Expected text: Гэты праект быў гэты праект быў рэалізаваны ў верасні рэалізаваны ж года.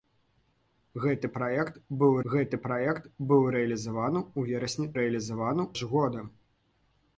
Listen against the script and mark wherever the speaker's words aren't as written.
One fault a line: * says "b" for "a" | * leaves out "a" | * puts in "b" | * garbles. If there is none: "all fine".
all fine